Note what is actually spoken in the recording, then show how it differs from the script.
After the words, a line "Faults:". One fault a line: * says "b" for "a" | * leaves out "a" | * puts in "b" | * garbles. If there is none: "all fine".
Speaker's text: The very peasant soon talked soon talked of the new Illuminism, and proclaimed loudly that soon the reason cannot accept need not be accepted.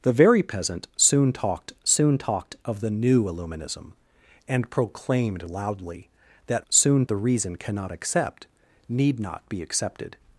The very peasant soon talked soon talked of the new Illuminism, and proclaimed loudly that soon the reason cannot accept need not be accepted.
Faults:
all fine